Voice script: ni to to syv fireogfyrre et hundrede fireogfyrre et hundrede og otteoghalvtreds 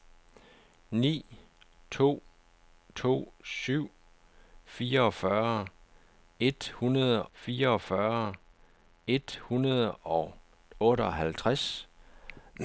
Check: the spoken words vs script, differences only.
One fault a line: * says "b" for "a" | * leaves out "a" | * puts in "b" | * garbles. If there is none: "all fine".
all fine